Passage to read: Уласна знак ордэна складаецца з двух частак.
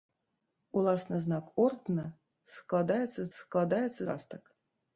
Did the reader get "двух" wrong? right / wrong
wrong